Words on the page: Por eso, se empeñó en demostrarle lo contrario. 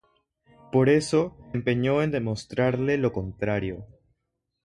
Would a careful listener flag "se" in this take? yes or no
yes